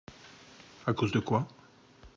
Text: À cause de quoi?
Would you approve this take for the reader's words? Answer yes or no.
yes